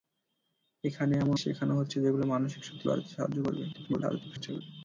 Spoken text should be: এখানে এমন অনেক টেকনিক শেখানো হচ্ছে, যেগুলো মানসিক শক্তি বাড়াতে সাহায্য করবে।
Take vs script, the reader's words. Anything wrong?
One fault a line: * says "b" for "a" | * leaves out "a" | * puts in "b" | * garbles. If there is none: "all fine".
* leaves out "অনেক টেকনিক"
* garbles